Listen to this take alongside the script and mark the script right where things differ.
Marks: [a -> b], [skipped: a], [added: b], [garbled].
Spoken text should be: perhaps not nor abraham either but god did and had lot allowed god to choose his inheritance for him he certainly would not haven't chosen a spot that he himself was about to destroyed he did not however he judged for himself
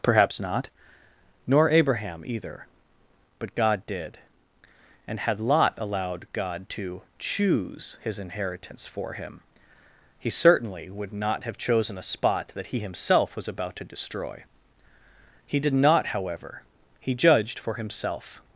perhaps not nor abraham either but god did and had lot allowed god to choose his inheritance for him he certainly would not [haven't -> have] chosen a spot that he himself was about to [destroyed -> destroy] he did not however he judged for himself